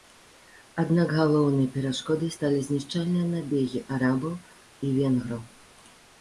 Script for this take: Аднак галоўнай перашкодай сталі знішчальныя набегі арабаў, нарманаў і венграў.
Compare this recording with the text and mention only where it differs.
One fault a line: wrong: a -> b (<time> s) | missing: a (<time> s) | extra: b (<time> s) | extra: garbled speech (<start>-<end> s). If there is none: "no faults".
missing: нарманаў (4.3 s)